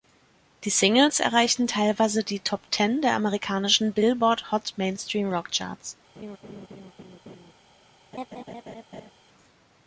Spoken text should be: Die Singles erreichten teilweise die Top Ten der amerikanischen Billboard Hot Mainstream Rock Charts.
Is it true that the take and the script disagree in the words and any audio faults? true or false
true